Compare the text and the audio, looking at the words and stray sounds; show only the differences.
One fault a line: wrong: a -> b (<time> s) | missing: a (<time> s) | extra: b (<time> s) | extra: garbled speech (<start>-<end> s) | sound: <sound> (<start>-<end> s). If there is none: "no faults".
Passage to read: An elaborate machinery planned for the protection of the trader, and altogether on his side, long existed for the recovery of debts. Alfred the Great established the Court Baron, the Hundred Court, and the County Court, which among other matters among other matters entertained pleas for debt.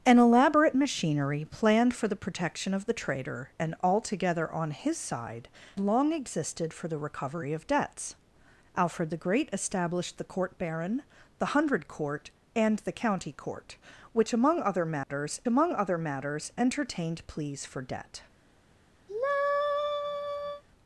sound: dropout (15.0-15.1 s)
sound: sigh (19.1-20.6 s)